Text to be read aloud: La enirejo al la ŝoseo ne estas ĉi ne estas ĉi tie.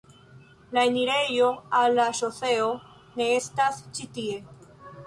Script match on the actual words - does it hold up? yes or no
no